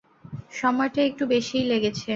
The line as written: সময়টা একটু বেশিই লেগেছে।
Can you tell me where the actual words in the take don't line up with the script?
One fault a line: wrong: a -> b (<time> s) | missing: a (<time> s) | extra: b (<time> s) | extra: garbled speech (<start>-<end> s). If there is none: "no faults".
no faults